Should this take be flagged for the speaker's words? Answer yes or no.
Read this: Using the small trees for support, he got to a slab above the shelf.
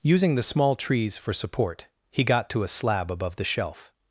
no